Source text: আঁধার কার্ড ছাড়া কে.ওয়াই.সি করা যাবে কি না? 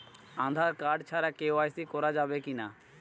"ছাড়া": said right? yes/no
yes